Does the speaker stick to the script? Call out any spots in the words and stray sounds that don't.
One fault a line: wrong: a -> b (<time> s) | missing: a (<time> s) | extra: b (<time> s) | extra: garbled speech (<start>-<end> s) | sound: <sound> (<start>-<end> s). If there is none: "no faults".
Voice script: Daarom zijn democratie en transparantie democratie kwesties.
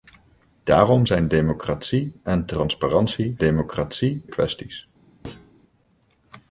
sound: thud (5.2-5.5 s)